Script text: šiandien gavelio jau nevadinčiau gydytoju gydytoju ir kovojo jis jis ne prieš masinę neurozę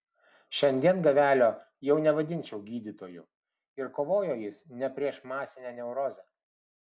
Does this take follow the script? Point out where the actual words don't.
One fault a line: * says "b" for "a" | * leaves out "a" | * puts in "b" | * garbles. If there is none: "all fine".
* leaves out "gydytoju"
* leaves out "jis"